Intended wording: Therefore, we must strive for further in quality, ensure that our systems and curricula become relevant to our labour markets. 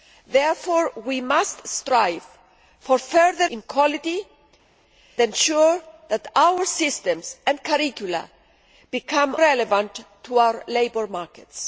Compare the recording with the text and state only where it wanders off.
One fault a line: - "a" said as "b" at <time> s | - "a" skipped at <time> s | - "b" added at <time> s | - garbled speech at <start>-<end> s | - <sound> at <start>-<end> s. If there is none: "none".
none